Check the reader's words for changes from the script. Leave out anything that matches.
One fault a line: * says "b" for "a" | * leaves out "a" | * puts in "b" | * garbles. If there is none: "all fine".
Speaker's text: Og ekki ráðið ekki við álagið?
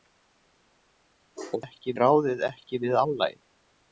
all fine